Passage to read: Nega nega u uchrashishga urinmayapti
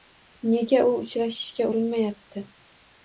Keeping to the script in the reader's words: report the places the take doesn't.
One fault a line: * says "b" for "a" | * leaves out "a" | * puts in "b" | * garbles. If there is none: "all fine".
* leaves out "nega"